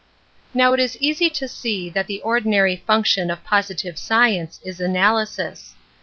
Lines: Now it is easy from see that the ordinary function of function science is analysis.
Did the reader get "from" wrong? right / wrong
wrong